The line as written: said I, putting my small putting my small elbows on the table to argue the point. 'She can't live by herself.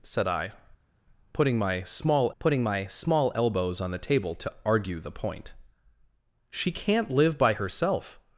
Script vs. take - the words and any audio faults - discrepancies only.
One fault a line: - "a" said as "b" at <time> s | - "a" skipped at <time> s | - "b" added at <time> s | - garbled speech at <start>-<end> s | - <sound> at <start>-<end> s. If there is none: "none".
none